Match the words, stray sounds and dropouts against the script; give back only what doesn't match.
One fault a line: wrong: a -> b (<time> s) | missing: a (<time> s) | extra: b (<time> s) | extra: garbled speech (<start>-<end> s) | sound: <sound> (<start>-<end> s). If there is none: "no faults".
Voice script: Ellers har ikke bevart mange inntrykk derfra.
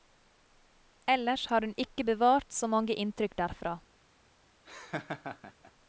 extra: hun (1.6 s)
extra: så (2.5 s)
sound: laugh (4.7-5.7 s)